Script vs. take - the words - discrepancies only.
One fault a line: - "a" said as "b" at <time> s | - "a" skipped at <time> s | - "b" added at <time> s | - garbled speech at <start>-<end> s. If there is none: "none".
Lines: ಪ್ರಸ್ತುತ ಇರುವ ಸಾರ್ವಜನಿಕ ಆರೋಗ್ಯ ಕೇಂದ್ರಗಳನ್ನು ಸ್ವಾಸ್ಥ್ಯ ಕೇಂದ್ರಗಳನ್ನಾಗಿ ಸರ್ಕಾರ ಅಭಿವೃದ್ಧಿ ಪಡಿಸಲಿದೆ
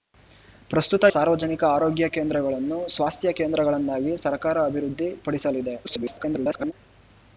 - "ಇರುವ" skipped at 1.0 s
- garbled speech at 5.8-6.7 s